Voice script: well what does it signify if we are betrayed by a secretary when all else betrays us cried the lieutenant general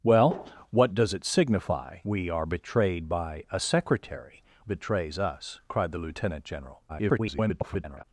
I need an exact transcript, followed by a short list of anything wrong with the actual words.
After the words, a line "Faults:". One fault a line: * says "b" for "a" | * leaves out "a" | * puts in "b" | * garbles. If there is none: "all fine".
well what does it signify we are betrayed by a secretary betrays us cried the lieutenant general [garbled]
Faults:
* leaves out "if"
* leaves out "when all else"
* garbles